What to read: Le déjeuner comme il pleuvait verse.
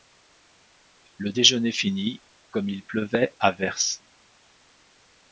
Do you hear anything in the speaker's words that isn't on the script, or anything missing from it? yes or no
yes